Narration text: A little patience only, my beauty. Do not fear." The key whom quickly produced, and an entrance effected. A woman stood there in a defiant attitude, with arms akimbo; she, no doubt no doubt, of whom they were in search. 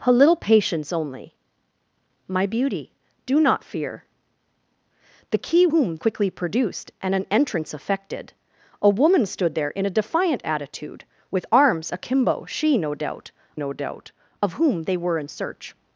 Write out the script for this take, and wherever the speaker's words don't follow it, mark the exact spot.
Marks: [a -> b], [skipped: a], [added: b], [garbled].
A little patience only, my beauty. Do not fear." The key whom quickly produced, and an entrance effected. A woman stood there in a defiant attitude, with arms akimbo; she, no doubt no doubt, of whom they were in search.